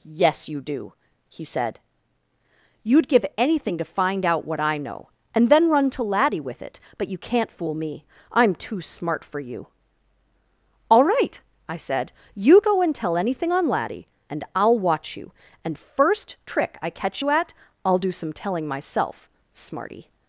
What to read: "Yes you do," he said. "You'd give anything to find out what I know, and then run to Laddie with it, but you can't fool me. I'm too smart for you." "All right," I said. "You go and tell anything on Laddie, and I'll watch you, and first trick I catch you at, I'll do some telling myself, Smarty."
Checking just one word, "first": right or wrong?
right